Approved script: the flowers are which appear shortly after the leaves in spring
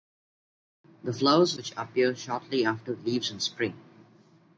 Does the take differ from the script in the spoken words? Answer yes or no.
no